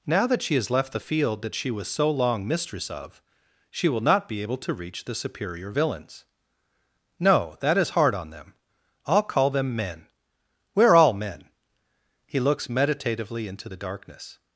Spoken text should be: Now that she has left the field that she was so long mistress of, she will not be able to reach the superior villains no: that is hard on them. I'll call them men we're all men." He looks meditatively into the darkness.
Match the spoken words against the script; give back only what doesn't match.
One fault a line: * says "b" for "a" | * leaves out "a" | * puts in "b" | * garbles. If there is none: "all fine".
all fine